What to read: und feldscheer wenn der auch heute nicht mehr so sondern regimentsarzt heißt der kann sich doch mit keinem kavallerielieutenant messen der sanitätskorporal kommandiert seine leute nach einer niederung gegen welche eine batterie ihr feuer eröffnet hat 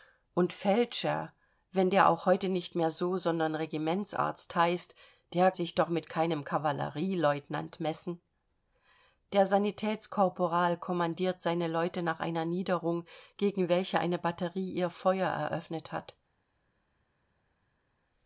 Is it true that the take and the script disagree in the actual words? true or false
true